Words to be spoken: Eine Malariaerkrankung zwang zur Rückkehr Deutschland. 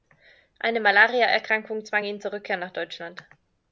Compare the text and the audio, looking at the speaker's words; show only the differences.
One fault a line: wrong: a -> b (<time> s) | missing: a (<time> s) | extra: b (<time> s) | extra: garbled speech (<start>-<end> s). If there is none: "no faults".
extra: ihn (2.0 s)
extra: nach (2.6 s)